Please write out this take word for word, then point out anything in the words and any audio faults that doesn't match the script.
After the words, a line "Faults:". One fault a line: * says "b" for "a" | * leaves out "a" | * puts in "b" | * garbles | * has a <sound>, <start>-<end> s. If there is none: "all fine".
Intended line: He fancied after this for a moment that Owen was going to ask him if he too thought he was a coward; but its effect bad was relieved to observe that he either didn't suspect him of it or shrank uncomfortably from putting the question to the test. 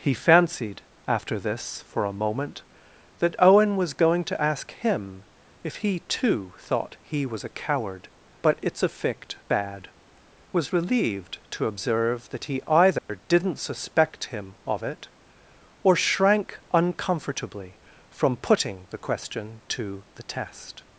He fancied after this for a moment that Owen was going to ask him if he too thought he was a coward; but its effect bad was relieved to observe that he either didn't suspect him of it or shrank uncomfortably from putting the question to the test.
Faults:
* has a dropout, 13.0-13.1 s